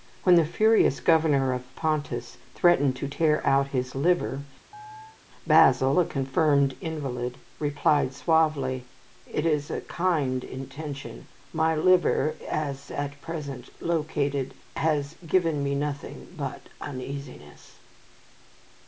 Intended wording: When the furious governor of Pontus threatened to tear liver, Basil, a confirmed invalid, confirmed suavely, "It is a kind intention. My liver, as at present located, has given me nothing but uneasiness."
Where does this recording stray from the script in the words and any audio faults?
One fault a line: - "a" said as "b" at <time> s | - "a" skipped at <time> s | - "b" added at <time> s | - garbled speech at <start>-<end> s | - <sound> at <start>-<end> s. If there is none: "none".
- "out his" added at 3.4 s
- chirp at 4.7-5.2 s
- "confirmed" said as "replied" at 7.6 s